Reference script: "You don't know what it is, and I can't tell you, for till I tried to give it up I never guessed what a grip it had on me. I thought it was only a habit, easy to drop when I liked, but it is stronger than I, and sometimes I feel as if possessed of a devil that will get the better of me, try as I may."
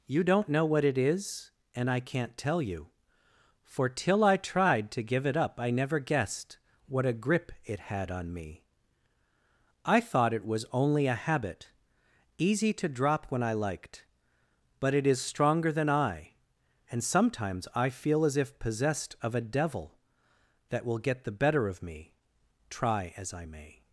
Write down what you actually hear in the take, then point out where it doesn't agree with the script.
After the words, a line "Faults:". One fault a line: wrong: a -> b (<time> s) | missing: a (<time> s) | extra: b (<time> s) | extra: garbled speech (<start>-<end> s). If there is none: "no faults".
"You don't know what it is, and I can't tell you, for till I tried to give it up I never guessed what a grip it had on me. I thought it was only a habit, easy to drop when I liked, but it is stronger than I, and sometimes I feel as if possessed of a devil that will get the better of me, try as I may."
Faults:
no faults